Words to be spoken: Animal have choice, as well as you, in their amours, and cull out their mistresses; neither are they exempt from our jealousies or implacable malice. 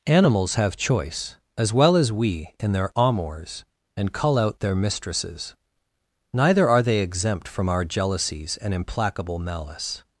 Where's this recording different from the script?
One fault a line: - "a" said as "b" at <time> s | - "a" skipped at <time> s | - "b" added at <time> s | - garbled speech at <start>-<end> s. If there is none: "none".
- "Animal" said as "Animals" at 0.1 s
- "you" said as "we" at 2.1 s
- "or" said as "and" at 8.6 s